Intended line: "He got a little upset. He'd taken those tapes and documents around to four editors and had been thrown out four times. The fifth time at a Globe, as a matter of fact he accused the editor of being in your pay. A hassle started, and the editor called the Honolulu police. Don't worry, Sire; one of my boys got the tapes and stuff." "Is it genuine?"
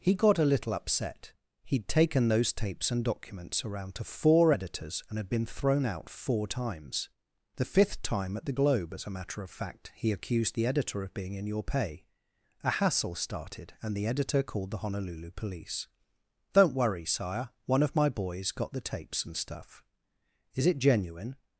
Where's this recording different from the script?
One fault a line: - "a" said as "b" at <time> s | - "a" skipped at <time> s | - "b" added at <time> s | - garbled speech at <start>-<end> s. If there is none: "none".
- "a" said as "the" at 8.4 s